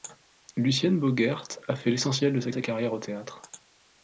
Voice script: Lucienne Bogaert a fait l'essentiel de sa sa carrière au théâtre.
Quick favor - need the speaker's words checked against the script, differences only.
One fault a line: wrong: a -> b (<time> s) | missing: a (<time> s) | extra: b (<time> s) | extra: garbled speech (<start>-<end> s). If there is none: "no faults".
no faults